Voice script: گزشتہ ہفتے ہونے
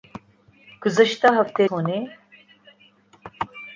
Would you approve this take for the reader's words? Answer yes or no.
yes